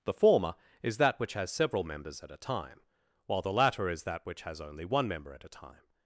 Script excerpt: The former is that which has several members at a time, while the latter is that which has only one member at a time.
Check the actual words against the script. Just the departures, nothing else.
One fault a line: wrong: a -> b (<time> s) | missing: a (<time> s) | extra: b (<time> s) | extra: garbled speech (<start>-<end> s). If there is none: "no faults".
no faults